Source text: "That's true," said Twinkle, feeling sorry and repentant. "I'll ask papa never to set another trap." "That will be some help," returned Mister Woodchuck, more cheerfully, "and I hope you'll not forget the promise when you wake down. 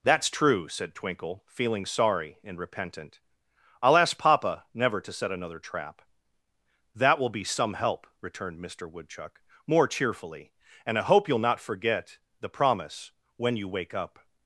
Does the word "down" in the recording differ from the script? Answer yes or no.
yes